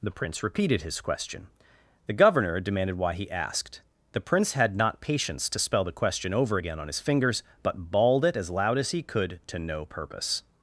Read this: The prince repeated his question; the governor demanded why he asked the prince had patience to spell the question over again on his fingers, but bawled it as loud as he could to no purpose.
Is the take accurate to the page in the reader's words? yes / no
no